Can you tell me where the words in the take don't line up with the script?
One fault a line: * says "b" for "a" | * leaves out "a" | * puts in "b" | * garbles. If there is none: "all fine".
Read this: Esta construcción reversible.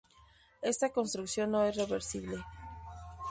* puts in "no es"